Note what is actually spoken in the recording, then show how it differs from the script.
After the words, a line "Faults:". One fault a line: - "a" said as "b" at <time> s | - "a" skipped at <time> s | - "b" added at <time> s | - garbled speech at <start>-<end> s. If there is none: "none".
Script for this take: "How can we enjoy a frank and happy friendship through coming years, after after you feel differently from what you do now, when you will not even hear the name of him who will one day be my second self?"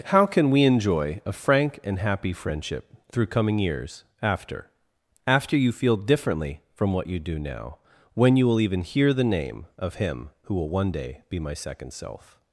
"How can we enjoy a frank and happy friendship through coming years, after after you feel differently from what you do now, when you will even hear the name of him who will one day be my second self?"
Faults:
- "not" skipped at 8.6 s